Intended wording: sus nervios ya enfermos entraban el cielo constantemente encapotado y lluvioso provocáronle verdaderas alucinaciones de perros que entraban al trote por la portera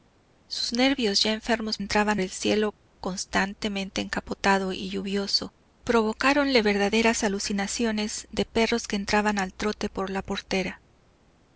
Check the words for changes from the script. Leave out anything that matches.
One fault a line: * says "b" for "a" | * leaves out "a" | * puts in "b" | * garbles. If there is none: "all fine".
all fine